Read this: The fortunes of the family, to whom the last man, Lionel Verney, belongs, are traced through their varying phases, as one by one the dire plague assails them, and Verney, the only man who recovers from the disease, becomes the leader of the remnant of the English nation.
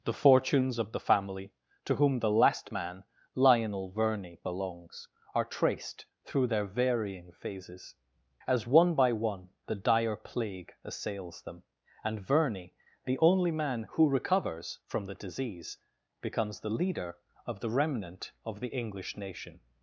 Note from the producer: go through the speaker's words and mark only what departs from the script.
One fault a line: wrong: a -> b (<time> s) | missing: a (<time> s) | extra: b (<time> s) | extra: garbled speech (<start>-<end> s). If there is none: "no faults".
no faults